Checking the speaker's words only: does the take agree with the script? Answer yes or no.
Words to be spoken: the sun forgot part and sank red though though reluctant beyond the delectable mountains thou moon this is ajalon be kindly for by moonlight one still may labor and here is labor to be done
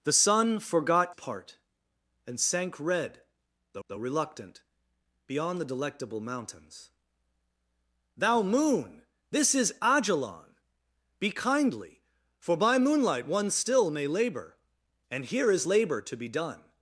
yes